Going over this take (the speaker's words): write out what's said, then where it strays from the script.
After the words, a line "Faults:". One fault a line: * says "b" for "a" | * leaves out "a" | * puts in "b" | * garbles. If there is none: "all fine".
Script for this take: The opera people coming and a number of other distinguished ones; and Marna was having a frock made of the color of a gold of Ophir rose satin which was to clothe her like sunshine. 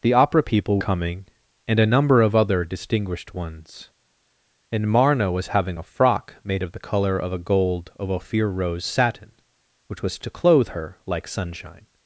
The opera people coming and a number of other distinguished ones; and Marna was having a frock made of the color of a gold of Ophir rose satin which was to clothe her like sunshine.
Faults:
all fine